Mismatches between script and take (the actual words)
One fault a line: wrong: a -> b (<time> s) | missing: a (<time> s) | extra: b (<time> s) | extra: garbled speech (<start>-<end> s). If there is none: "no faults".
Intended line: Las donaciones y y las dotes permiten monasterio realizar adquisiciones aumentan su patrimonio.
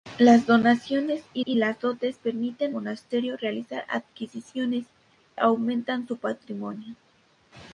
no faults